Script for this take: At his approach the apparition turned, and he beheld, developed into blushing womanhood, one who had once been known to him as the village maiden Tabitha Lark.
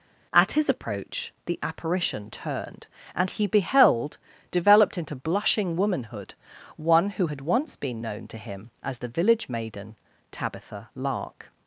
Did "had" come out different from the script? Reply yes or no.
no